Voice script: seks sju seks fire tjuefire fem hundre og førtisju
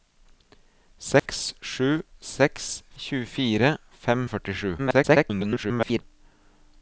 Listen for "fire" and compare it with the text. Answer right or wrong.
wrong